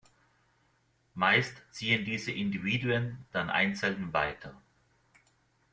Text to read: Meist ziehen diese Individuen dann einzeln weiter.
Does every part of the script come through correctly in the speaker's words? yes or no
yes